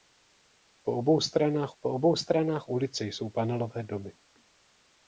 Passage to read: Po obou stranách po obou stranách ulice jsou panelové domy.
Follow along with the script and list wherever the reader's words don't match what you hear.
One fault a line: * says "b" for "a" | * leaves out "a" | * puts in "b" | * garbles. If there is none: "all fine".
all fine